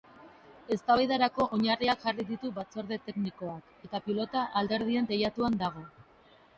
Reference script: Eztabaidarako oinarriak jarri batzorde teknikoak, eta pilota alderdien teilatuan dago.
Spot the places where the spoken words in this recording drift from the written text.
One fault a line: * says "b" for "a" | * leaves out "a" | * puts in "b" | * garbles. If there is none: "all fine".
* puts in "ditu"